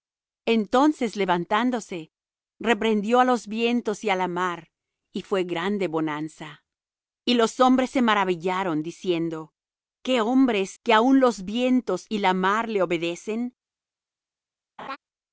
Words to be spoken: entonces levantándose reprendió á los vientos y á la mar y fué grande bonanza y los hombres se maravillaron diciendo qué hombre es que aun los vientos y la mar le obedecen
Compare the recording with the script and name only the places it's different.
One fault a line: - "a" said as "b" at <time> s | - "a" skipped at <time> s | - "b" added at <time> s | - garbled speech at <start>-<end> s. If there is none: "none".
none